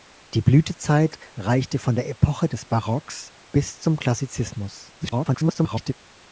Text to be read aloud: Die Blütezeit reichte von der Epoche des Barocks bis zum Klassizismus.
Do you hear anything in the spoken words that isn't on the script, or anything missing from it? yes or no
yes